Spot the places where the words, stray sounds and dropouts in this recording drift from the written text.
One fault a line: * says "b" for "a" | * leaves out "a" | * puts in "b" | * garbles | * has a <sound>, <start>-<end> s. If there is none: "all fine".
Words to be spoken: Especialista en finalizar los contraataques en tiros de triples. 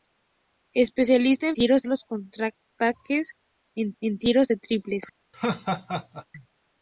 * says "tiros" for "finalizar"
* puts in "en"
* has a laugh, 5.3-6.3 s